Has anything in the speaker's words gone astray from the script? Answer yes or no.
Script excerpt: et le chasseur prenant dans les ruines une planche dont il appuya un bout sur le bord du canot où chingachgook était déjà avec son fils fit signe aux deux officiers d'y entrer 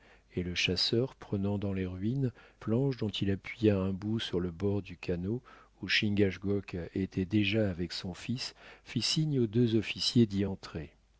yes